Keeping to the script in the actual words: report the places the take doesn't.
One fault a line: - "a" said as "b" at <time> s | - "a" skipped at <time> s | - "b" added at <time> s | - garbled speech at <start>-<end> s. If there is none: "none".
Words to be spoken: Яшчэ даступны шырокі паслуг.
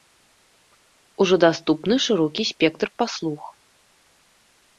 - "Яшчэ" said as "Ужо" at 1.2 s
- "спектр" added at 2.5 s